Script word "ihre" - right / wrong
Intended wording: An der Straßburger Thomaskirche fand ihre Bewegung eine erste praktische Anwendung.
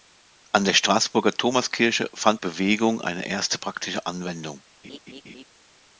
wrong